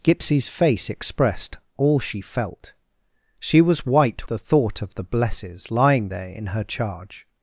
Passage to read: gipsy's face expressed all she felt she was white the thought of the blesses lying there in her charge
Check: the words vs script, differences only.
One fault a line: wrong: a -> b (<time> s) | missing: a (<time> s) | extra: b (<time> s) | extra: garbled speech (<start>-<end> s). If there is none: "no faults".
no faults